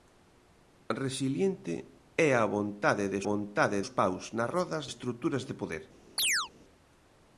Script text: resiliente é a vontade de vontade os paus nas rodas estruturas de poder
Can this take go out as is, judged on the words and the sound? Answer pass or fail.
fail